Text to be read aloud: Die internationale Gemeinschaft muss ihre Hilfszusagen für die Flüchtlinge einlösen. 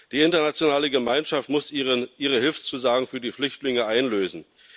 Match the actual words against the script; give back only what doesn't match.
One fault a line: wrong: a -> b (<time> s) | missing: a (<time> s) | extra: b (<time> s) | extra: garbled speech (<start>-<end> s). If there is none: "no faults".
no faults